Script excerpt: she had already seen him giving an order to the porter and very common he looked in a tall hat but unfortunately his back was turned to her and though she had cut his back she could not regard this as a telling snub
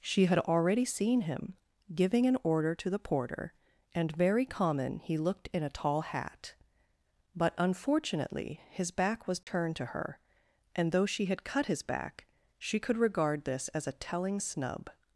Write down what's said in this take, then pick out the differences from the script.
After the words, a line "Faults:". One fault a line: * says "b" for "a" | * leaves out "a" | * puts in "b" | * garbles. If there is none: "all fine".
she had already seen him giving an order to the porter and very common he looked in a tall hat but unfortunately his back was turned to her and though she had cut his back she could regard this as a telling snub
Faults:
* leaves out "not"